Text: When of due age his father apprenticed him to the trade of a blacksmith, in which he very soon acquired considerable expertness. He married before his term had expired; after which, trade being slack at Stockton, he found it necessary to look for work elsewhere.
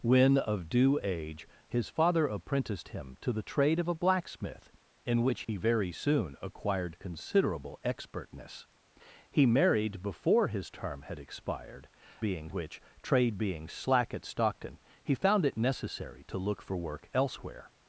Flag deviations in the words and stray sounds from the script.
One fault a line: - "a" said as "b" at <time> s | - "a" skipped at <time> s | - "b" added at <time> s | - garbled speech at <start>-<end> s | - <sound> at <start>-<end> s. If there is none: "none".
- dropout at 5.4-5.5 s
- "after" said as "being" at 12.2 s